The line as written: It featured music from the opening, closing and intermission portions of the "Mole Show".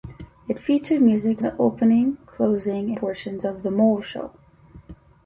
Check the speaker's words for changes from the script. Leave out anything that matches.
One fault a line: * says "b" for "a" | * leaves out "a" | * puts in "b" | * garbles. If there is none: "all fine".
* leaves out "from"
* leaves out "and intermission"